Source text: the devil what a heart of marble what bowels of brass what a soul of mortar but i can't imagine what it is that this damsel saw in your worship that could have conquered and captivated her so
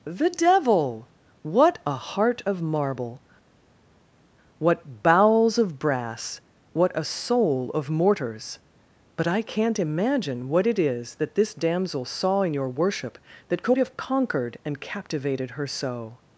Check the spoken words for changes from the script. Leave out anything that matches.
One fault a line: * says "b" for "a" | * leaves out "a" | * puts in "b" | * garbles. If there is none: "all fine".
* says "mortars" for "mortar"